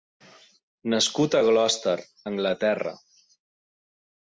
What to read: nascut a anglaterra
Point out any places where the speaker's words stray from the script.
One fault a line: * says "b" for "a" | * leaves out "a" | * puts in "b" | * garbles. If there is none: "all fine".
* puts in "gloucester"